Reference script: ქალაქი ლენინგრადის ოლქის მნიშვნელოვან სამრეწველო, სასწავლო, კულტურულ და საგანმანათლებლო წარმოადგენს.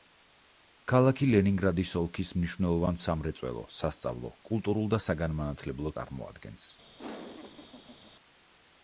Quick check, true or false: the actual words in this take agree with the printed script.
true